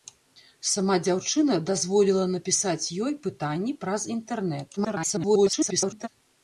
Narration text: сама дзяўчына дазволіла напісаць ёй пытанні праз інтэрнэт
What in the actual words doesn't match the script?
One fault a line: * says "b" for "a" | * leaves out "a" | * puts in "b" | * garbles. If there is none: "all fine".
* garbles